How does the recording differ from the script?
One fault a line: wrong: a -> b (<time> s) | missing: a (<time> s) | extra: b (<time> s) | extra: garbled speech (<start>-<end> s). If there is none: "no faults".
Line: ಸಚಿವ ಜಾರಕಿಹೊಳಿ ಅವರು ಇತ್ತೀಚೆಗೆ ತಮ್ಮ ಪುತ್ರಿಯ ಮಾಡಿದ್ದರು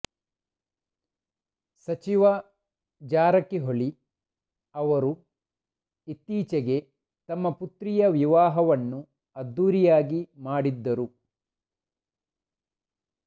extra: ವಿವಾಹವನ್ನು ಅದ್ದೂರಿಯಾಗಿ (8.2 s)